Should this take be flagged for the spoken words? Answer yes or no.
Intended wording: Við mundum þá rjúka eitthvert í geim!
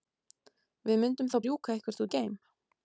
no